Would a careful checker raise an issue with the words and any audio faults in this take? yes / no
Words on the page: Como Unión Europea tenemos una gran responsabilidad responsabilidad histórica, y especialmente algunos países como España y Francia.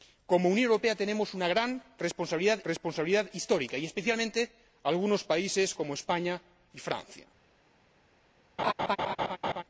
yes